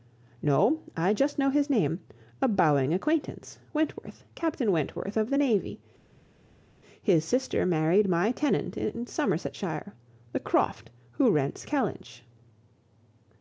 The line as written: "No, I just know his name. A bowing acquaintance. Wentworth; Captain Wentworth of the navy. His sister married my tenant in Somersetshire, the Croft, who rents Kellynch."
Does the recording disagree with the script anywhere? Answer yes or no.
no